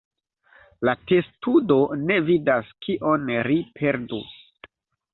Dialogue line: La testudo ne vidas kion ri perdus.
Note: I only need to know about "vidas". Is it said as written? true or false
true